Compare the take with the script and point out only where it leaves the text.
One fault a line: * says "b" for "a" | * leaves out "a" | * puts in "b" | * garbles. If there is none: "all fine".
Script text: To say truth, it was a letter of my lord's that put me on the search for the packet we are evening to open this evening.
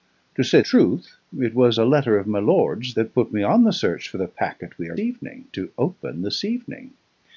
all fine